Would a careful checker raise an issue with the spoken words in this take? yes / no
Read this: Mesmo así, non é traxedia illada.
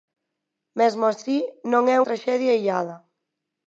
no